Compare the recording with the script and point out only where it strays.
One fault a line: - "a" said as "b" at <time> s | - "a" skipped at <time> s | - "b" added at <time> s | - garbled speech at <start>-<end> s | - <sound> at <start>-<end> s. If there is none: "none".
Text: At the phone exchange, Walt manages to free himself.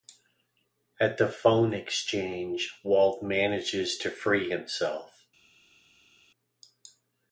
none